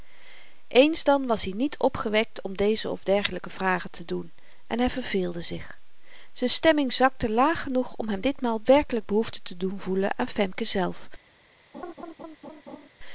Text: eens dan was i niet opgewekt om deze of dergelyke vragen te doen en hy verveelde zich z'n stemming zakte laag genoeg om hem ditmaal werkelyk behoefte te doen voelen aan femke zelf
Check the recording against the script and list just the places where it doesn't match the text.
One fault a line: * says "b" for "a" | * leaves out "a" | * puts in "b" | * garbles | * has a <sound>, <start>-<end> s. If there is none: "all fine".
* has a laugh, 11.7-12.9 s